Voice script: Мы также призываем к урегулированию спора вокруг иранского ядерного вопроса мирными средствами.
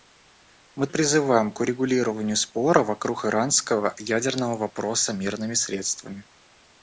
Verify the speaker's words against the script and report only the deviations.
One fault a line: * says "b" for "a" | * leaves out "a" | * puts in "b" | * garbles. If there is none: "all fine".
* leaves out "также"